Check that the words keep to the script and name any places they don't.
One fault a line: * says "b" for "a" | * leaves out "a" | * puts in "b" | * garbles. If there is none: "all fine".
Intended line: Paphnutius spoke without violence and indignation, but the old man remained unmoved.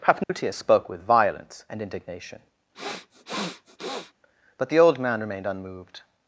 * says "with" for "without"